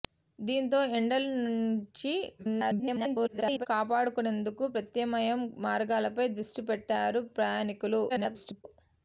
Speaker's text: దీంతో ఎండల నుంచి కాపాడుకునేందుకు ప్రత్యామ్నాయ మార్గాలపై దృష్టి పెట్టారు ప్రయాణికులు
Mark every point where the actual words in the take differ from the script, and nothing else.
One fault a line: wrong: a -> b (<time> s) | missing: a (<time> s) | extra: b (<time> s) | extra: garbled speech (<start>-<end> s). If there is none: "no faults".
extra: garbled speech (2.4-3.7 s)
extra: garbled speech (8.1-8.6 s)